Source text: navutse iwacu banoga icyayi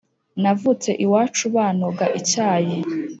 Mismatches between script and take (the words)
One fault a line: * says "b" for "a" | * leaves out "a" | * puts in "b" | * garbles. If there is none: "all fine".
all fine